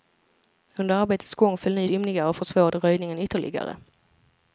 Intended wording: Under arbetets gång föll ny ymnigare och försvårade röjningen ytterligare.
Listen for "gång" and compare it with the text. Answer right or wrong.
right